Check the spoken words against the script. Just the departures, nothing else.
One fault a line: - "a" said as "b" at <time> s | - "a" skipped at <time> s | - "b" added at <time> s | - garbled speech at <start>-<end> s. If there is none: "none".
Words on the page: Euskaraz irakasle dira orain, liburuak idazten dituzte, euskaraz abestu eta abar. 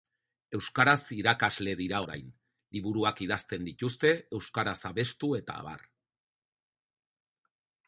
none